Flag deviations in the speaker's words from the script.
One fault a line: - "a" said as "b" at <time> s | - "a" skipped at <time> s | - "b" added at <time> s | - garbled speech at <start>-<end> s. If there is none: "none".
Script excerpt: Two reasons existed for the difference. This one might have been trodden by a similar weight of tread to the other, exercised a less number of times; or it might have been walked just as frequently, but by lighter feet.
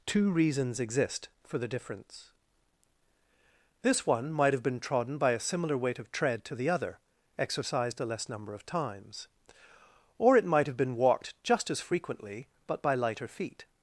- "existed" said as "exist" at 0.8 s